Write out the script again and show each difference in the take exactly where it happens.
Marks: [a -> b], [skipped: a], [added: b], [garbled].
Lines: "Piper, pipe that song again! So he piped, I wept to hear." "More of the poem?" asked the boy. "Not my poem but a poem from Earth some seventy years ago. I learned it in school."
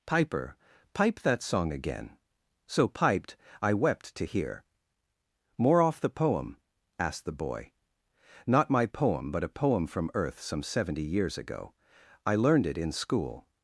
"Piper, pipe that song again! So [skipped: he] piped, I wept to hear." "More [of -> off] the poem?" asked the boy. "Not my poem but a poem from Earth some seventy years ago. I learned it in school."